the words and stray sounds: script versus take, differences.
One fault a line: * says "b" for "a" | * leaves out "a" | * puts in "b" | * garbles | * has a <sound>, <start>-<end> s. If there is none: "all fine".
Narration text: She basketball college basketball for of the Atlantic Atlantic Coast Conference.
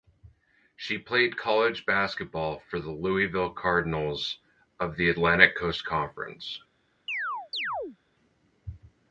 * says "played" for "basketball"
* puts in "the Louisville Cardinals"
* leaves out "Atlantic"
* has a chirp, 7.1-8.0 s